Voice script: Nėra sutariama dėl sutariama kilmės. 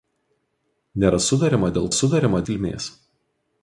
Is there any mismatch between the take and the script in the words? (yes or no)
no